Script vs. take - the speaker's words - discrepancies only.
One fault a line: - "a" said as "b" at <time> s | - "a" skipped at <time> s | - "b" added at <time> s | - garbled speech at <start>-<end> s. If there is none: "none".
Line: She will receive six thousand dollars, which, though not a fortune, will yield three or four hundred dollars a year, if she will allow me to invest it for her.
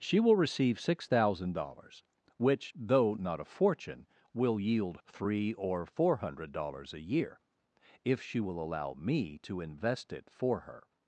none